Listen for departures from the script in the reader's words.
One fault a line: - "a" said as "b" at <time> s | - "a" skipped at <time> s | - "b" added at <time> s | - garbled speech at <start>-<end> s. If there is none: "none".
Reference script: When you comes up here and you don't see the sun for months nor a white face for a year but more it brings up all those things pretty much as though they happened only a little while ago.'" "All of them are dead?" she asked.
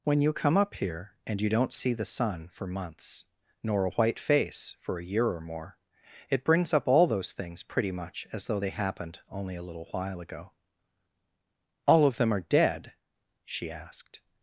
- "comes" said as "come" at 0.3 s
- "but" said as "or" at 5.3 s